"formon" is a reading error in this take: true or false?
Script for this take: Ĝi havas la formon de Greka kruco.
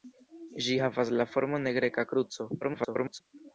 false